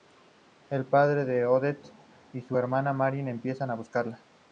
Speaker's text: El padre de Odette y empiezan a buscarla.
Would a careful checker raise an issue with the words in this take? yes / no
yes